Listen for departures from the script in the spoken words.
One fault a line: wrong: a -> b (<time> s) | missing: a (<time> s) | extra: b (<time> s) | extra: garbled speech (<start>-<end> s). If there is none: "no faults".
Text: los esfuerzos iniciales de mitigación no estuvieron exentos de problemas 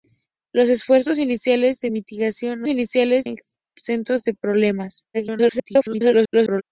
wrong: estuvieron -> iniciales (2.7 s)
extra: garbled speech (5.1-6.6 s)